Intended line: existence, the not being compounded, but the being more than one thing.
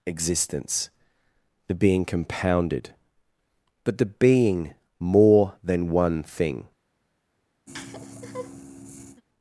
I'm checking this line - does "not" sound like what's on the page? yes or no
no